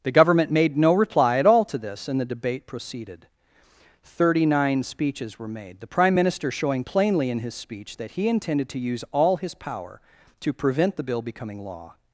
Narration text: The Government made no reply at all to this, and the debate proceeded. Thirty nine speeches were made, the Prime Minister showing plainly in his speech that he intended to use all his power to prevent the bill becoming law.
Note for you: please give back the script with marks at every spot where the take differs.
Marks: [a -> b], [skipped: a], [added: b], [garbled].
The Government made no reply at all to this, and the debate proceeded. Thirty nine speeches were made, the Prime Minister showing plainly in his speech that he intended to use all his power to prevent the bill becoming law.